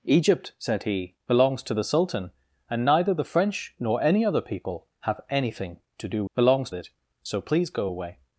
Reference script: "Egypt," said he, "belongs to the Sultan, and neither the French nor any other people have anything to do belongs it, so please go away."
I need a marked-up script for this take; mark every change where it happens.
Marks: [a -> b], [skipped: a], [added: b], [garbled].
"Egypt," said he, "belongs to the Sultan, and neither the French nor any other people have anything to do belongs it, so please go away."